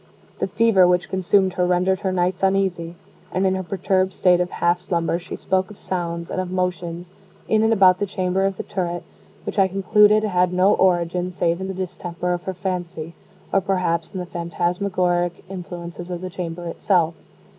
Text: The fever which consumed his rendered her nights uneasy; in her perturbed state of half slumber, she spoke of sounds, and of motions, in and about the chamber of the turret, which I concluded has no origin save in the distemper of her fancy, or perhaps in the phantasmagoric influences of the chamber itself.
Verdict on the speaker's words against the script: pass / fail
fail